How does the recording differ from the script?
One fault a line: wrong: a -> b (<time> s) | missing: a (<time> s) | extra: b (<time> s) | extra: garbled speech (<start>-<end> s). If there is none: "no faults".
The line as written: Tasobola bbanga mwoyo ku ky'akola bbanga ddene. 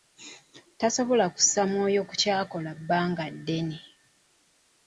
wrong: bbanga -> kussa (1.4 s)